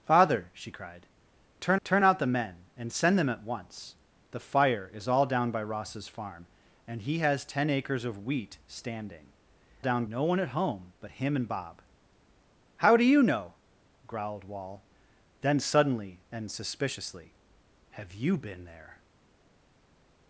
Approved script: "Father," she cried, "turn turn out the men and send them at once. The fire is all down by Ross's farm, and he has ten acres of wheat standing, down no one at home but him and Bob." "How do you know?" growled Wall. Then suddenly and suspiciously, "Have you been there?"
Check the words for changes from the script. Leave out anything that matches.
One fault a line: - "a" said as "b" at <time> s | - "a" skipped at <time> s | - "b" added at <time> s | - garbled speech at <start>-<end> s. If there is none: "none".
none